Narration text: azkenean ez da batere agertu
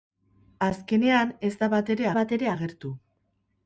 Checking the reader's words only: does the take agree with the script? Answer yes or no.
no